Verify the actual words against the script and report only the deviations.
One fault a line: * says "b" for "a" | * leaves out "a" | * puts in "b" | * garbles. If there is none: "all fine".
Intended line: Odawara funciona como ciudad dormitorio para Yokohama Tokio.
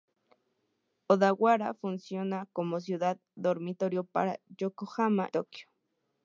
all fine